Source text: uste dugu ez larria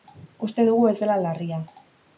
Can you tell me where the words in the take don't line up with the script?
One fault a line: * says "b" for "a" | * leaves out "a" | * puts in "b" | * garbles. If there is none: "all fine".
* puts in "dela"